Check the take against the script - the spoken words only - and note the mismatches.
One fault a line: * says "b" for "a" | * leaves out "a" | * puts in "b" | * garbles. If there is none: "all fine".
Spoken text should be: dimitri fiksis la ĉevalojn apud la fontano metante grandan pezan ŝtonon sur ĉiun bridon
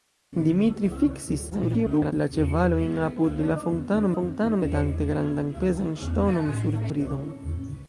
* garbles
* puts in "fontano"
* leaves out "ĉiun"